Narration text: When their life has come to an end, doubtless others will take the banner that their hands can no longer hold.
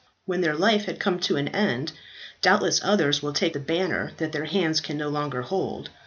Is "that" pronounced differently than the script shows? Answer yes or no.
no